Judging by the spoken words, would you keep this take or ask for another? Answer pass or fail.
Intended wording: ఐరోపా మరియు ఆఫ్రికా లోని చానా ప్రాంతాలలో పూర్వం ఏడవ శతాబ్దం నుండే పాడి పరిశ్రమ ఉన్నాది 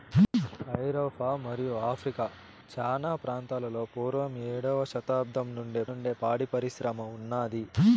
fail